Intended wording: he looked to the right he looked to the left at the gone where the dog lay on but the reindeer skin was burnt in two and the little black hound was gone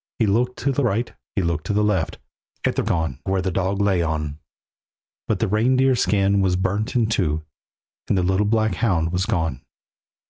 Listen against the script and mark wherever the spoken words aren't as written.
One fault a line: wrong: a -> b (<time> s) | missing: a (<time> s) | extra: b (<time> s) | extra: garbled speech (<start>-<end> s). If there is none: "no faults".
no faults